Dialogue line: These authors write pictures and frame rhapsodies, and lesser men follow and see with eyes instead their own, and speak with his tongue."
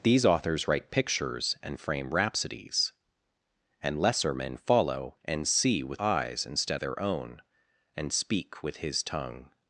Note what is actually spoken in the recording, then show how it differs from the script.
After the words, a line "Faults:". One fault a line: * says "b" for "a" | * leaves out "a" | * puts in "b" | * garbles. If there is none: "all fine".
These authors write pictures and frame rhapsodies, and lesser men follow and see with eyes instead their own, and speak with his tongue."
Faults:
all fine